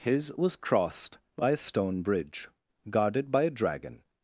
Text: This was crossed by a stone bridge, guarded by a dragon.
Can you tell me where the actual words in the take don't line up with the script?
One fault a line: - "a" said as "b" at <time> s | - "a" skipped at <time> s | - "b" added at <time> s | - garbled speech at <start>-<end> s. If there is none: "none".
- "This" said as "His" at 0.0 s